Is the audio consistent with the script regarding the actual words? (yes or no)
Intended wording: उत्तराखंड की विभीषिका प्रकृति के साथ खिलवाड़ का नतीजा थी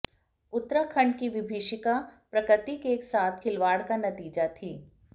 yes